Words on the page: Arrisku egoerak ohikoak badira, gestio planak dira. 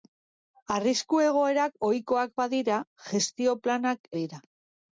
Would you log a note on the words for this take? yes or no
no